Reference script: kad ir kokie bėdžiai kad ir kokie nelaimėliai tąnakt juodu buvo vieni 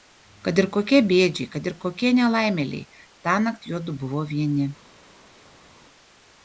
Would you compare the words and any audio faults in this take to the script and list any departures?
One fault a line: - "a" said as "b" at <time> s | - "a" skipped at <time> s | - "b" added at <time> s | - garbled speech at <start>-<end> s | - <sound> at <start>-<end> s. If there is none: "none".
none